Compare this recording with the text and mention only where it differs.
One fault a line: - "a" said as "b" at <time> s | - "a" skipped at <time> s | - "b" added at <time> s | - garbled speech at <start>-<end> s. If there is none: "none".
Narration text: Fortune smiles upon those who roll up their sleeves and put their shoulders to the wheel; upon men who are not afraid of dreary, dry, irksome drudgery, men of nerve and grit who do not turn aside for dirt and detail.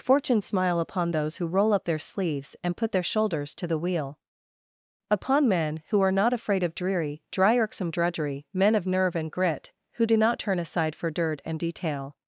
- "smiles" said as "smile" at 0.4 s